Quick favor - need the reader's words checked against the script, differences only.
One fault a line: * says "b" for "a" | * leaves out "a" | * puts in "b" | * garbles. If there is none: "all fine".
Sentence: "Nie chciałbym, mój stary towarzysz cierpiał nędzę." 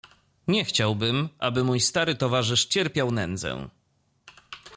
* puts in "aby"